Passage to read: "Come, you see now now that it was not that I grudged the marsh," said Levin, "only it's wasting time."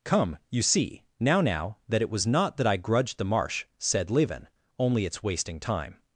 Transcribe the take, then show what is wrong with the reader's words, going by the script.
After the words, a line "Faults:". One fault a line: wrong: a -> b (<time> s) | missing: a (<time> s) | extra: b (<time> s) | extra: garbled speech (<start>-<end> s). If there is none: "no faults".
"Come, you see now now that it was not that I grudged the marsh," said Levin, "only it's wasting time."
Faults:
no faults